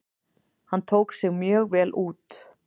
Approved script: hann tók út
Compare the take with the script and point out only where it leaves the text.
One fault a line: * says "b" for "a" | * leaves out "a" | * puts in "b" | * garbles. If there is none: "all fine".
* puts in "sig mjög vel"